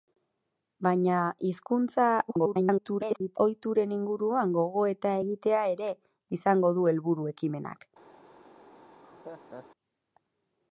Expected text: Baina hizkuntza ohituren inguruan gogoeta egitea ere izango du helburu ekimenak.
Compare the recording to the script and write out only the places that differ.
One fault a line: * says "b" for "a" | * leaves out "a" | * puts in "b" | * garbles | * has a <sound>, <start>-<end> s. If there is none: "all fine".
* garbles
* has a laugh, 8.7-9.7 s